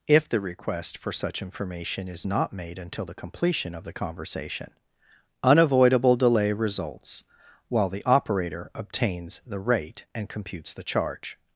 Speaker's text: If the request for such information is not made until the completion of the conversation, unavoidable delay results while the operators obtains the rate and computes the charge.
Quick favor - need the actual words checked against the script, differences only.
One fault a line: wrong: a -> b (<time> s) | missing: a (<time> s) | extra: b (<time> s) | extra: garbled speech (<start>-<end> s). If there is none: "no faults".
wrong: operators -> operator (8.0 s)